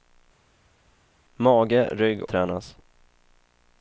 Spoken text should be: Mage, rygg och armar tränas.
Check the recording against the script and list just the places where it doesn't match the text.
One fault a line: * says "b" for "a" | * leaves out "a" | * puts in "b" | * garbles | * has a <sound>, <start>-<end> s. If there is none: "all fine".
* leaves out "och armar"